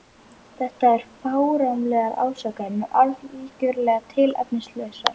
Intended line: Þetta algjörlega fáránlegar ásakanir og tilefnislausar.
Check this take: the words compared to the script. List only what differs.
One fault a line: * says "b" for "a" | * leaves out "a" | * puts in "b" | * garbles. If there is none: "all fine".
* says "eru" for "algjörlega"
* puts in "algjörlega"